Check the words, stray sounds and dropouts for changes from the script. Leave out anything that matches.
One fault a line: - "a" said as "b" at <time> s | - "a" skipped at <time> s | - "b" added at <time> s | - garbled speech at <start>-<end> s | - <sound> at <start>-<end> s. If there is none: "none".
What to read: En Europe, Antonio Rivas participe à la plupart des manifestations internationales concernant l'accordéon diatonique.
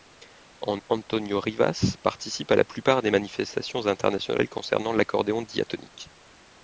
- "Europe" skipped at 0.8 s